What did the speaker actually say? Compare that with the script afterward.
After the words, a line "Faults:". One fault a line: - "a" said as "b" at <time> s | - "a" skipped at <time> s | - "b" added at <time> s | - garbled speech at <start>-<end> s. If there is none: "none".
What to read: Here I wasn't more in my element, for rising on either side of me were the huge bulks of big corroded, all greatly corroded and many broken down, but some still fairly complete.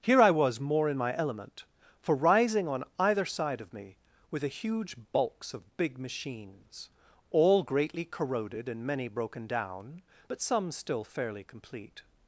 Here I was more in my element, for rising on either side of me were the huge bulks of big machines, all greatly corroded and many broken down, but some still fairly complete.
Faults:
- "wasn't" said as "was" at 0.3 s
- "corroded" said as "machines" at 6.0 s